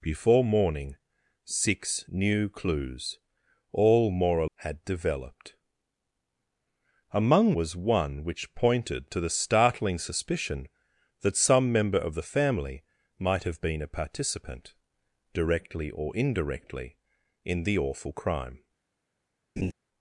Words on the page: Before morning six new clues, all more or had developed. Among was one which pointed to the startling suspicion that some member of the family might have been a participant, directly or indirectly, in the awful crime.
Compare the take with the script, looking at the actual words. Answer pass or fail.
pass